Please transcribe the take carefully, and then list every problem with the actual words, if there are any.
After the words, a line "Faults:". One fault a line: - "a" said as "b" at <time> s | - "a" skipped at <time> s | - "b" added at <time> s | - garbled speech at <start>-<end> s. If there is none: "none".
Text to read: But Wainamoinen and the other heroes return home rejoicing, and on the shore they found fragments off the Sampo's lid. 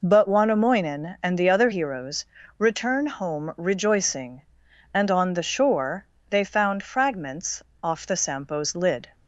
But Wainamoinen and the other heroes return home rejoicing, and on the shore they found fragments off the Sampo's lid.
Faults:
none